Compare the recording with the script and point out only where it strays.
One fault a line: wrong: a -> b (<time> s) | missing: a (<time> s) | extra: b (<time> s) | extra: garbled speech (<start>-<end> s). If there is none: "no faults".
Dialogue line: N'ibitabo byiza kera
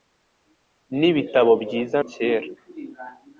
no faults